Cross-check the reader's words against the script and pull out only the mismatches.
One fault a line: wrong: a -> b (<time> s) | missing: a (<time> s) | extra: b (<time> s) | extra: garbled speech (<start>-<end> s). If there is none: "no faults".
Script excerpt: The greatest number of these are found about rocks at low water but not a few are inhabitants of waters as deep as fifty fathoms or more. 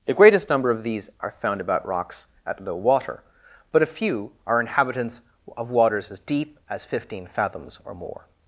missing: not (3.8 s)
wrong: fifty -> fifteen (6.8 s)